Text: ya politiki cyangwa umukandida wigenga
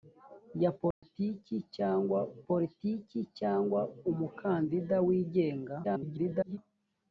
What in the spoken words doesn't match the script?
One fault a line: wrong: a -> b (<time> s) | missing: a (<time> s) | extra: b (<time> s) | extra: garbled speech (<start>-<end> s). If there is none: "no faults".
extra: politiki cyangwa (2.5 s)
extra: garbled speech (5.8-6.6 s)